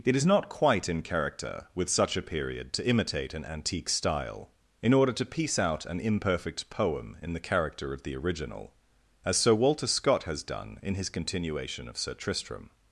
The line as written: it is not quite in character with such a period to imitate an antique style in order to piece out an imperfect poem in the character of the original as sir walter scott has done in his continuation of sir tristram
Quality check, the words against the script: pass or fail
pass